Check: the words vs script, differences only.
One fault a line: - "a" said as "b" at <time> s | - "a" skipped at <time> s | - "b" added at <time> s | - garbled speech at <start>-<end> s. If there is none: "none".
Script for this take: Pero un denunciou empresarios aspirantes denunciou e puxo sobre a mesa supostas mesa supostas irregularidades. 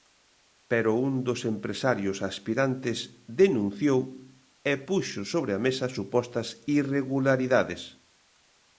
- "denunciou" said as "dos" at 1.3 s
- "mesa supostas" skipped at 6.5 s